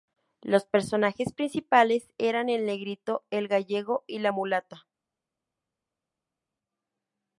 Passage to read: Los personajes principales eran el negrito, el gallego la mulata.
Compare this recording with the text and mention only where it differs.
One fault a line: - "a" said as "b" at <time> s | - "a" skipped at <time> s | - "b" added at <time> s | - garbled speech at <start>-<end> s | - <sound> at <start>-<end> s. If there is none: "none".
- "y" added at 4.1 s